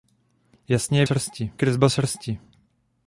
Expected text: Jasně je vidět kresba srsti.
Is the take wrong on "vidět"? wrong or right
wrong